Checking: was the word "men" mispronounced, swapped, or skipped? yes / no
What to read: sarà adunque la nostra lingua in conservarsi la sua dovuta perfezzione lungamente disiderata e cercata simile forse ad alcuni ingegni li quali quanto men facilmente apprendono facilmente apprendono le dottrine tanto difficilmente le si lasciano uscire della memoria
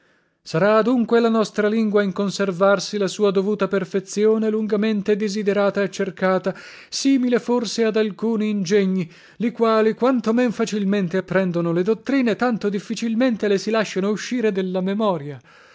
no